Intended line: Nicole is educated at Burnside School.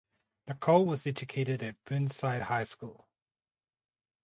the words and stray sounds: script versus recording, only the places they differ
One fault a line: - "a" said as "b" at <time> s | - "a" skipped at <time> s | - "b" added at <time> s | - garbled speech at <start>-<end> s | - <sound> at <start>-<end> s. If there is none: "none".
- "is" said as "was" at 0.9 s
- "High" added at 2.4 s